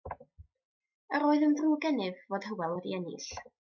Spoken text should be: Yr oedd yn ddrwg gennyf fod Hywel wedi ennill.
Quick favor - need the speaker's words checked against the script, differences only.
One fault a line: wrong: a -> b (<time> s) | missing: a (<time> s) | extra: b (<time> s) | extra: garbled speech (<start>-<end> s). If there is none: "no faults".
no faults